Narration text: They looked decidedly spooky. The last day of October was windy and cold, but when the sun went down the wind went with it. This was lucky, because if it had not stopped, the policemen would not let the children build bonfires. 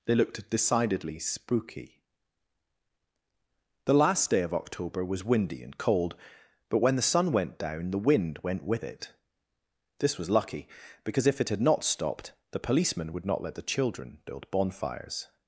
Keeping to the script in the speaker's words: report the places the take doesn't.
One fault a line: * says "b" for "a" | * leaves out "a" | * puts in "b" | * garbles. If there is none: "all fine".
all fine